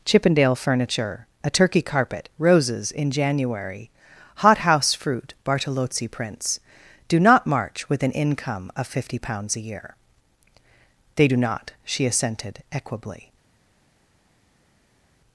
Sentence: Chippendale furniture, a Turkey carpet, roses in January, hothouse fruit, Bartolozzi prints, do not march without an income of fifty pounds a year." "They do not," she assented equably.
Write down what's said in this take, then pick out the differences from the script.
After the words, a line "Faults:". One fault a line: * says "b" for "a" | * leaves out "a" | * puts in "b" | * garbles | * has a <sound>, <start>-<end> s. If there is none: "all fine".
Chippendale furniture, a Turkey carpet, roses in January, hothouse fruit, Bartolozzi prints, do not march with an income of fifty pounds a year." "They do not," she assented equably.
Faults:
* says "with" for "without"